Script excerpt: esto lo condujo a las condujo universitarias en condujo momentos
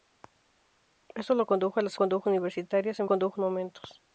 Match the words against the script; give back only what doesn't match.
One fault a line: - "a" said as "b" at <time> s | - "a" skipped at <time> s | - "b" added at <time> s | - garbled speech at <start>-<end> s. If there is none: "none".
none